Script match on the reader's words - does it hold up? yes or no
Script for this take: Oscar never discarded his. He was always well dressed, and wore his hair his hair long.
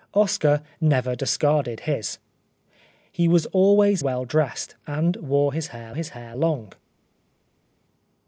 yes